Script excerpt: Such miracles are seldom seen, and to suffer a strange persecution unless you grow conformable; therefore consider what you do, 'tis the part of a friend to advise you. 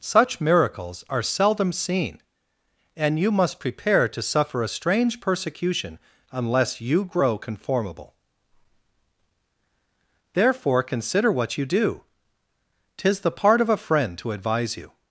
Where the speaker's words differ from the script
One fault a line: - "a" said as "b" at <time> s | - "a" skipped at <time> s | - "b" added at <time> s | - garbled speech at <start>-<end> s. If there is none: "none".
- "you must prepare" added at 3.2 s